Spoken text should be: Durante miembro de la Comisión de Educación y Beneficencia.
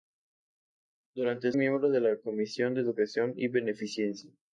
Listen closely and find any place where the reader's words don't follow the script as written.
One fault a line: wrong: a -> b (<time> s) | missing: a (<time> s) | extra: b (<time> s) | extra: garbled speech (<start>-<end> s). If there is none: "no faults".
no faults